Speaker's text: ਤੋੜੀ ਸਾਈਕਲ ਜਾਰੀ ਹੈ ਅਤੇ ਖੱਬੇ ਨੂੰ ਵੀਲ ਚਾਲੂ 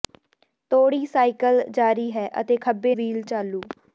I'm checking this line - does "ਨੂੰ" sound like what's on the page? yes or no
no